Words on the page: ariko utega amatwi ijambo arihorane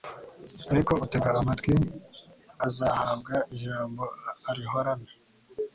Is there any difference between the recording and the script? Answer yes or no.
yes